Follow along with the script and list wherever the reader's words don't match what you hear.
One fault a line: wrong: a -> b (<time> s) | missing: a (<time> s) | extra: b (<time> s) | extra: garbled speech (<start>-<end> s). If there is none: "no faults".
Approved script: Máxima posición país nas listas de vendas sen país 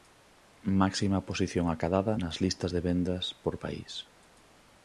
wrong: país -> acadada (1.7 s)
wrong: sen -> por (3.4 s)